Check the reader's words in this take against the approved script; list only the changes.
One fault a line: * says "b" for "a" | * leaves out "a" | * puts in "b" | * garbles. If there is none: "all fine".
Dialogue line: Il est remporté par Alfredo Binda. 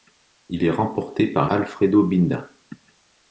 all fine